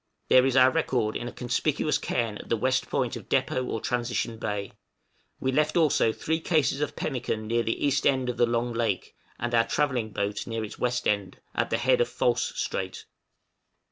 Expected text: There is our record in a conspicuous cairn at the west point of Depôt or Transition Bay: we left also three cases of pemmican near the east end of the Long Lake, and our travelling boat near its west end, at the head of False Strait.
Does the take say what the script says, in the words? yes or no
yes